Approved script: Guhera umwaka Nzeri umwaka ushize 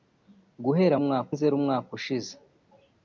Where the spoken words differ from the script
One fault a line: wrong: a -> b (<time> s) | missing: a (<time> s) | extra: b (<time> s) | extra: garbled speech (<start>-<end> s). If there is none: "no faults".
no faults